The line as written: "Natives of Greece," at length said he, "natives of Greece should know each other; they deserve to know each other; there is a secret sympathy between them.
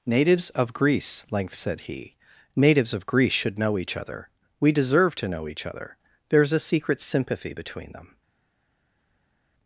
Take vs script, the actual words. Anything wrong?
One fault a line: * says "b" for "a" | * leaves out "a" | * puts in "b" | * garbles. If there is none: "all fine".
* leaves out "at"
* says "we" for "they"